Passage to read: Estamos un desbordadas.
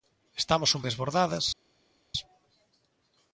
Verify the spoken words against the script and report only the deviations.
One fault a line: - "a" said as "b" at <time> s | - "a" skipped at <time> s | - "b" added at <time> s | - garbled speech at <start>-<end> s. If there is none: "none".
none